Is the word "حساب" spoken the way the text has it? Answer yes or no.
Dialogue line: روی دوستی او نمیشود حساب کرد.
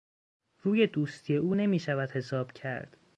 yes